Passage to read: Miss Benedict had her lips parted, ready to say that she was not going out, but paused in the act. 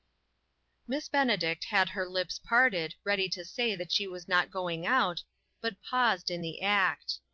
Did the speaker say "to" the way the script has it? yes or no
yes